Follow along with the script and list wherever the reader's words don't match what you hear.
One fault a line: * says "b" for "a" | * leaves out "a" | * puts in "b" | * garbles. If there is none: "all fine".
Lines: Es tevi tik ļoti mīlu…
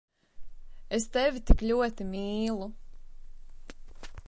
all fine